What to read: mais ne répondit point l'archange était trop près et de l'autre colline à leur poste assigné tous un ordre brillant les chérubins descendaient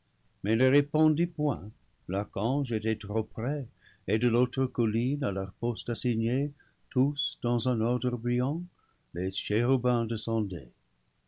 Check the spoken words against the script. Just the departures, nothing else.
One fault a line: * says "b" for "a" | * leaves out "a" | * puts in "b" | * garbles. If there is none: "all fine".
* puts in "dans"